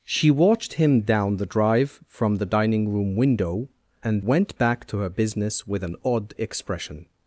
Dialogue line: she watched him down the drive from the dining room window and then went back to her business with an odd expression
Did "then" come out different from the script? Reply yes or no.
yes